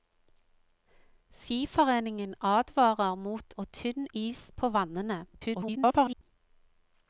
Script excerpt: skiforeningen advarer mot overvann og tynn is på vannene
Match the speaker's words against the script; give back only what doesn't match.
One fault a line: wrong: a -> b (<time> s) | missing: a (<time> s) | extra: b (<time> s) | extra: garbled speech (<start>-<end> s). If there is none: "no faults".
missing: overvann (3.5 s)
extra: garbled speech (5.3-6.2 s)